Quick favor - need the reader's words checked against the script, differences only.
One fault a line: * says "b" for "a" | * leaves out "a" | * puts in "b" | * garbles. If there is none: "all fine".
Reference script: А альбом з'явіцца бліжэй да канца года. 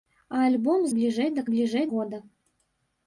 * leaves out "з'явіцца"
* says "бліжэй" for "канца"